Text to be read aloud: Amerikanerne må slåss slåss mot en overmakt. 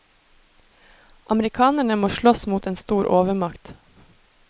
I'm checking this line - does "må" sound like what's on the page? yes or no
yes